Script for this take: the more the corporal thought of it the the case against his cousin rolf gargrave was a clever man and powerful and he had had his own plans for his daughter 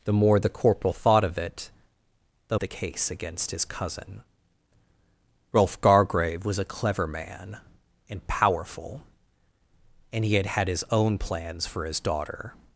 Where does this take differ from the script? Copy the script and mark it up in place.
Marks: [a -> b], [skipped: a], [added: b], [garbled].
the more the corporal thought of it the the case against his cousin rolf gargrave was a clever man and powerful and he had had his own plans for his daughter